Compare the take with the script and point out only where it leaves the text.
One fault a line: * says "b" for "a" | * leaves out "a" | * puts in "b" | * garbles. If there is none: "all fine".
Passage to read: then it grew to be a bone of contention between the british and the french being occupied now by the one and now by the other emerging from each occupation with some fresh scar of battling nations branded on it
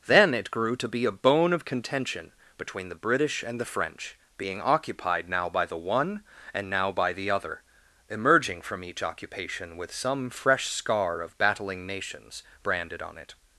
all fine